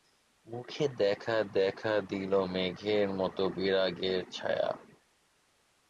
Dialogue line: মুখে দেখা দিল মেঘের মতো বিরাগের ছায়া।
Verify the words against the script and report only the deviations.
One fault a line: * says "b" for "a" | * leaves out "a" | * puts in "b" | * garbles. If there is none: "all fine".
* puts in "দেখা"